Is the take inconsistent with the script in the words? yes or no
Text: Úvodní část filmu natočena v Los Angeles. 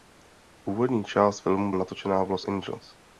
no